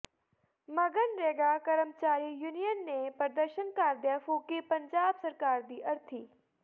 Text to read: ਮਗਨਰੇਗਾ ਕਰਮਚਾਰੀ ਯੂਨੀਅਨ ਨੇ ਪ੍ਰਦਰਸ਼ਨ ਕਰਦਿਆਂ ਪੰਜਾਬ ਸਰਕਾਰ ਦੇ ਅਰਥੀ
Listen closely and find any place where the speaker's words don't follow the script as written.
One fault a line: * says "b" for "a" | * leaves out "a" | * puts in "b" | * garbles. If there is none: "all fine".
* puts in "ਫੂਕੀ"
* says "ਦੀ" for "ਦੇ"